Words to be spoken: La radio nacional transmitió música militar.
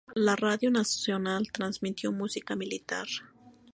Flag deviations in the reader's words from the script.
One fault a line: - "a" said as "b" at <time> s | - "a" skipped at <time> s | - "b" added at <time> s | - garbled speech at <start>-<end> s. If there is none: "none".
none